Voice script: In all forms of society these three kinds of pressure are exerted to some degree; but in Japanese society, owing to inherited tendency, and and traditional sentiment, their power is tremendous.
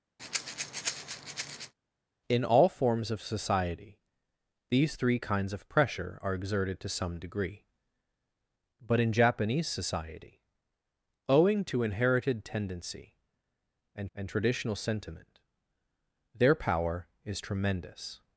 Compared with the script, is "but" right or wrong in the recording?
right